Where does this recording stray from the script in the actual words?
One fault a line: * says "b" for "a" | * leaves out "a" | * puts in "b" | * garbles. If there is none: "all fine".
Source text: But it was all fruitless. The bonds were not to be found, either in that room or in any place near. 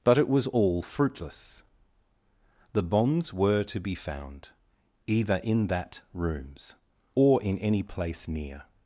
* leaves out "not"
* says "rooms" for "room"